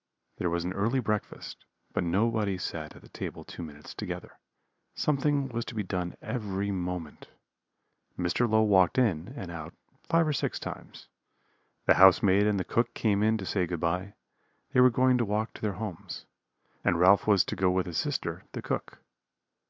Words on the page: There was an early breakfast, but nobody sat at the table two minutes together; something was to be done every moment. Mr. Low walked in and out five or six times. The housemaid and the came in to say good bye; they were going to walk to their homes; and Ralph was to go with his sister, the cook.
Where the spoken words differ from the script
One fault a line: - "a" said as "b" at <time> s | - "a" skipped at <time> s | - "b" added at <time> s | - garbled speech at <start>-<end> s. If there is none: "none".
- "cook" added at 12.7 s